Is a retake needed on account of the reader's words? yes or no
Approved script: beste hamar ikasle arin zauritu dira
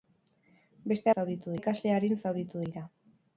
yes